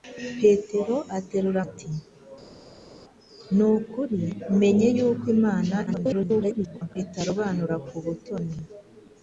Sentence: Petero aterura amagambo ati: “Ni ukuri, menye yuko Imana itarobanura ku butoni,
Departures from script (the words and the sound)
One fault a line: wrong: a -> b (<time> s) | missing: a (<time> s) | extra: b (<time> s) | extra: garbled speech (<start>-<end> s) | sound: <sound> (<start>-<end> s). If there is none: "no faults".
missing: amagambo (1.6 s)
extra: garbled speech (5.9-7.0 s)